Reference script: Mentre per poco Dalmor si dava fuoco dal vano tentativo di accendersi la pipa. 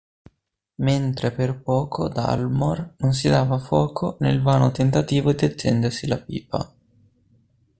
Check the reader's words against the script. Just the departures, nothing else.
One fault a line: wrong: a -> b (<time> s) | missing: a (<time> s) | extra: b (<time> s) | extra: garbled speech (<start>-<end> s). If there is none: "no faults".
extra: non (3.0 s)
wrong: dal -> nel (4.2 s)